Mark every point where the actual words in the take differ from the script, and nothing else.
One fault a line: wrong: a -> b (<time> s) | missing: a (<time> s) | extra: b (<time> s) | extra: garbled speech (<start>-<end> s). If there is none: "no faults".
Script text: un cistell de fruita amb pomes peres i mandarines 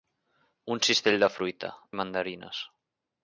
missing: amb pomes peres (1.7 s)